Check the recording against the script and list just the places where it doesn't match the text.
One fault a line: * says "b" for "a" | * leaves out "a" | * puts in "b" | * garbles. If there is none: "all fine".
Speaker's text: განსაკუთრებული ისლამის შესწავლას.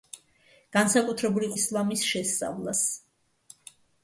all fine